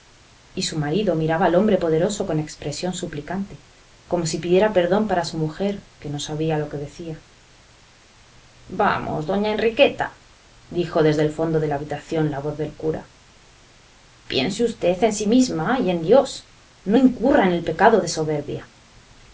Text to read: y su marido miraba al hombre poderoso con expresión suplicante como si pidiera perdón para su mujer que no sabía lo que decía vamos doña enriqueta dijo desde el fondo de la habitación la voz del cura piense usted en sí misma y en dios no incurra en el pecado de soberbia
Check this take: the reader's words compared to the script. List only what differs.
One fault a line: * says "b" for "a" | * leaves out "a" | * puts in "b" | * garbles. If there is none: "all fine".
all fine